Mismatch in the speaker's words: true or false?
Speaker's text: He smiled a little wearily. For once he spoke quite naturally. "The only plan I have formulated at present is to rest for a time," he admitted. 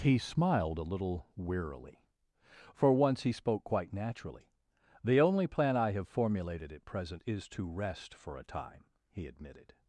false